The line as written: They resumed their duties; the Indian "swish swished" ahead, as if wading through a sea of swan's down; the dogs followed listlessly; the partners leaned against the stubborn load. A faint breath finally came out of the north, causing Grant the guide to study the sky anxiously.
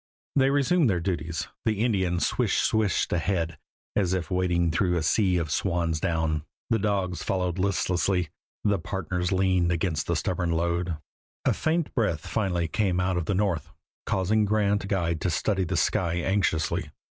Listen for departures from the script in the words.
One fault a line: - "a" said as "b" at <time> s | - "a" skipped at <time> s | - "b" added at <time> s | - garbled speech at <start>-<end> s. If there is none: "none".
none